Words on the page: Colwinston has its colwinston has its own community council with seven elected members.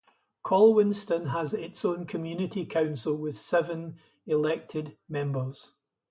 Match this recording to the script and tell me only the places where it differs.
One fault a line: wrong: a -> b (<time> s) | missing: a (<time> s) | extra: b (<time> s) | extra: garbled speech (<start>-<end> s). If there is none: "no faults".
missing: colwinston has its (1.8 s)